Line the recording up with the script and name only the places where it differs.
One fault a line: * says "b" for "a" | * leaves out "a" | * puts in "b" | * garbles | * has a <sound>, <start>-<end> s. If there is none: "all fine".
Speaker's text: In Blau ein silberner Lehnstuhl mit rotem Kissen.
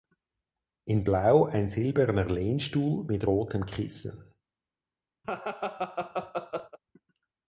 * has a laugh, 5.2-6.8 s